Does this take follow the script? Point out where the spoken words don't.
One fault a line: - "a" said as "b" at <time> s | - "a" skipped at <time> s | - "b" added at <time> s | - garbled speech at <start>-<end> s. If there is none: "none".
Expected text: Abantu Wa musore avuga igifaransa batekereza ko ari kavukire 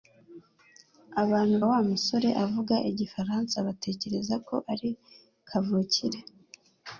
none